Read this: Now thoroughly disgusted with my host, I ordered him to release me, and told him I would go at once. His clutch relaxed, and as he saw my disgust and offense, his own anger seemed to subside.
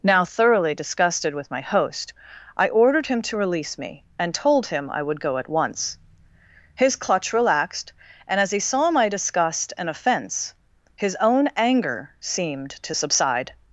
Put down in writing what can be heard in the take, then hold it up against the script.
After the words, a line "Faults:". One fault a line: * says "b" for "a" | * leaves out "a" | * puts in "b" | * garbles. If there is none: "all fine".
Now thoroughly disgusted with my host, I ordered him to release me, and told him I would go at once. His clutch relaxed, and as he saw my disgust and offense, his own anger seemed to subside.
Faults:
all fine